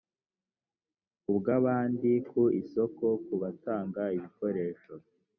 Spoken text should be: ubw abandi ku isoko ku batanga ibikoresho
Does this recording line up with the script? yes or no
yes